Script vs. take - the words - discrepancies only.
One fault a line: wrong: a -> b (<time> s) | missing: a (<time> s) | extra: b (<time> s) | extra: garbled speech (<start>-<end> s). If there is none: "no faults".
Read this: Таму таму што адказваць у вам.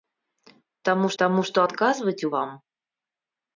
no faults